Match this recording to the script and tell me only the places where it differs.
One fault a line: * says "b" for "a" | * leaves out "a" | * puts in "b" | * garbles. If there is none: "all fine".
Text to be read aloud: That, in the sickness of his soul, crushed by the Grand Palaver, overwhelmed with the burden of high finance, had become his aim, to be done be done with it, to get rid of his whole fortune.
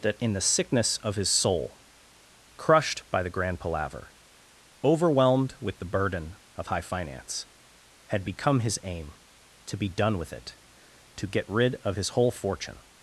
* leaves out "be done"